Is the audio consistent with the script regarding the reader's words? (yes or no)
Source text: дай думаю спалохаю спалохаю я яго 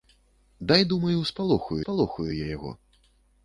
yes